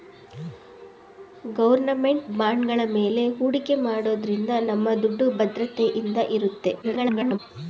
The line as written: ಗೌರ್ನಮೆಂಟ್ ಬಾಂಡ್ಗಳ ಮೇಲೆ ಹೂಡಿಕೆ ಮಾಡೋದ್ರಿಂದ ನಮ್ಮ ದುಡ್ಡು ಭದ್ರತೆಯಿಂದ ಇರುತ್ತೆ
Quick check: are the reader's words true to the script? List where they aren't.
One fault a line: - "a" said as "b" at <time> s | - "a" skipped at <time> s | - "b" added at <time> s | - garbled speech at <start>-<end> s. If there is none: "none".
- garbled speech at 6.8-7.4 s